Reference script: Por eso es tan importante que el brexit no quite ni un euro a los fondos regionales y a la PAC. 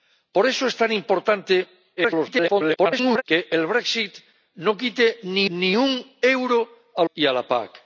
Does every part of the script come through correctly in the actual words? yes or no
no